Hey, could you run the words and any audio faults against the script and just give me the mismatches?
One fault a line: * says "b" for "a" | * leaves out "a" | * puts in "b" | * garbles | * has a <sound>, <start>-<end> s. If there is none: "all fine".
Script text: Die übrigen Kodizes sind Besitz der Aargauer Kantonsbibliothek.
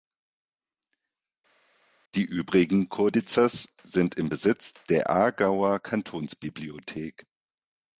* puts in "im"